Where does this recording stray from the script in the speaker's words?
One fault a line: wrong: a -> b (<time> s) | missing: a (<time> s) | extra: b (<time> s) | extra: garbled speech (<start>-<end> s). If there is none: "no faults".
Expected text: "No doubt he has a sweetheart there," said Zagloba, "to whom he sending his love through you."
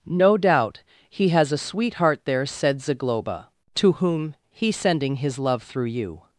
no faults